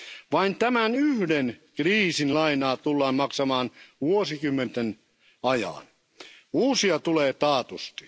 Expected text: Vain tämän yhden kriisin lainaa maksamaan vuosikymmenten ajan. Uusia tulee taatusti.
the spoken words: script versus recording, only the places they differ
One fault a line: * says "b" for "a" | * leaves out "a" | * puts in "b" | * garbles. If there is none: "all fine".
* puts in "tullaan"